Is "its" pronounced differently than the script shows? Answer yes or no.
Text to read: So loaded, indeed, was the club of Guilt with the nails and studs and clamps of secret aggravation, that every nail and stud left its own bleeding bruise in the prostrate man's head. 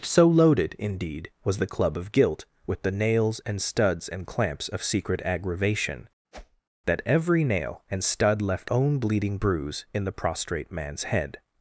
yes